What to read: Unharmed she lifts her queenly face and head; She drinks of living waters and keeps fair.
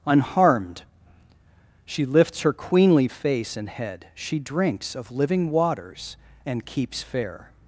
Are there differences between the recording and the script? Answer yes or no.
no